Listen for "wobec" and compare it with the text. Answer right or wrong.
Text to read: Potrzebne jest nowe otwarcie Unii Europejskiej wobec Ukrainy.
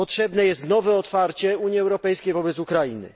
right